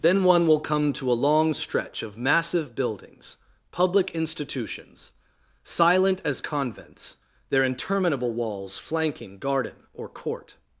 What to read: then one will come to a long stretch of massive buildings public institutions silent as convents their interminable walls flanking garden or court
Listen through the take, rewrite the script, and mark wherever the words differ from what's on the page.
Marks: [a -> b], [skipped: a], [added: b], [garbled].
then one will come to a long stretch of massive buildings public institutions silent as convents their interminable walls flanking garden or court